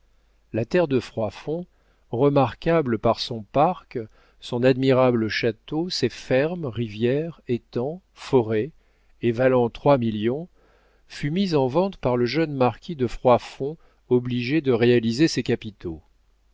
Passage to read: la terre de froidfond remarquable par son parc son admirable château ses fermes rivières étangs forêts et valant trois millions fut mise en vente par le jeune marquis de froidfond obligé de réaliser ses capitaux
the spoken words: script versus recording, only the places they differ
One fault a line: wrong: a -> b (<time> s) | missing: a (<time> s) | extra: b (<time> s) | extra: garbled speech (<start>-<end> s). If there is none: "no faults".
no faults